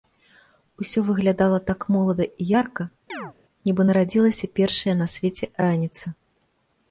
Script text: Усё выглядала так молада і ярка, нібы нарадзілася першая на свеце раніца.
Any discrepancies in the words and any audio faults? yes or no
yes